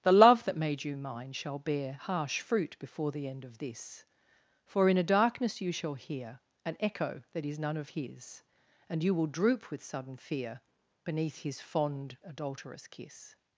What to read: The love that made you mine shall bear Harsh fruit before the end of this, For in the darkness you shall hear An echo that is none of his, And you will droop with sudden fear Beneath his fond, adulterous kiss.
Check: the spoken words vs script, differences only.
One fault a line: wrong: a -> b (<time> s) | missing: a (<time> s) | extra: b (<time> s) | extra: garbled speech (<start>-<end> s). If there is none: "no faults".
wrong: the -> a (5.0 s)